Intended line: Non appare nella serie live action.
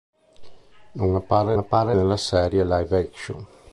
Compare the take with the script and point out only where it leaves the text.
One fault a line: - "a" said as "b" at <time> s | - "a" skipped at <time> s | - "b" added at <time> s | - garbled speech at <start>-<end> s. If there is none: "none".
- "appare" added at 1.6 s